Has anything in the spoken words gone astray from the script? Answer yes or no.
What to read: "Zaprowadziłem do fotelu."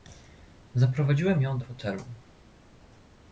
yes